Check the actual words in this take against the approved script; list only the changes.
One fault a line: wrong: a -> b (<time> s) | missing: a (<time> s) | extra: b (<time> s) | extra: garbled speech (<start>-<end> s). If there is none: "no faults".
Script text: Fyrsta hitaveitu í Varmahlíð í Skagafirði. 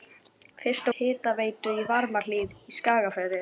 no faults